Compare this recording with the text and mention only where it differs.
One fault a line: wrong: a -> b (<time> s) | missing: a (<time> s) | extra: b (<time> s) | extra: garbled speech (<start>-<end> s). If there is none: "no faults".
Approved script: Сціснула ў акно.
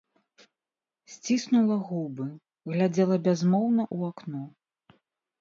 extra: губы глядзела бязмоўна (1.9 s)